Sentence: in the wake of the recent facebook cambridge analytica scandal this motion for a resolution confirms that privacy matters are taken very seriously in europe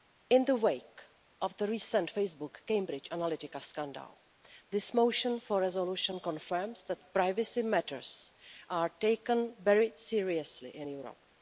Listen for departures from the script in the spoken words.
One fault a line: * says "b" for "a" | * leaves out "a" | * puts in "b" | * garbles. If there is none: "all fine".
all fine